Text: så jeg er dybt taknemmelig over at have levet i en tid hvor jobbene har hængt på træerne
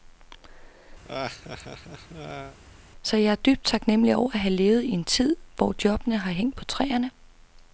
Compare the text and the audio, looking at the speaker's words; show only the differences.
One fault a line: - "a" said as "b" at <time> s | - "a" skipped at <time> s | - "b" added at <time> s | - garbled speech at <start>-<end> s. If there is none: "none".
none